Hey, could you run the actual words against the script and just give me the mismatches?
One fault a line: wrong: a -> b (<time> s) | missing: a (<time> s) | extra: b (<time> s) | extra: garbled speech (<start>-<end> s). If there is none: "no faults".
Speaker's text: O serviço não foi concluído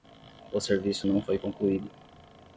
no faults